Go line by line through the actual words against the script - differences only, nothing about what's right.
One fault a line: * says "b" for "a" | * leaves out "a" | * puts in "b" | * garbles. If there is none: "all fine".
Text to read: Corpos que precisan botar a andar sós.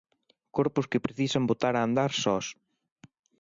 all fine